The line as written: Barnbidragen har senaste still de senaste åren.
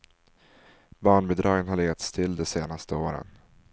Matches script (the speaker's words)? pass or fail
fail